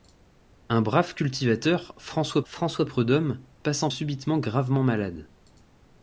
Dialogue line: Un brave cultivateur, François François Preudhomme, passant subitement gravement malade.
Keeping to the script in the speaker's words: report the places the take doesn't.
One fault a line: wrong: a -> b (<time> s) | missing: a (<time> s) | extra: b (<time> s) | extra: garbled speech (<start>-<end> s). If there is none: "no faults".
no faults